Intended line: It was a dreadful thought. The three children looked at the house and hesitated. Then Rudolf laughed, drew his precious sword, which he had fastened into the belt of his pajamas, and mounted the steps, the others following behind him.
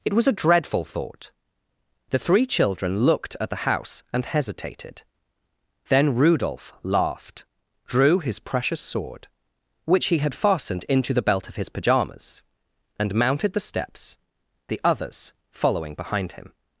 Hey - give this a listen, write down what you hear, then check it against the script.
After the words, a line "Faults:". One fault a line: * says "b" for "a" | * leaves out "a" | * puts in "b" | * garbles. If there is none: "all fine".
It was a dreadful thought. The three children looked at the house and hesitated. Then Rudolf laughed, drew his precious sword, which he had fastened into the belt of his pajamas, and mounted the steps, the others following behind him.
Faults:
all fine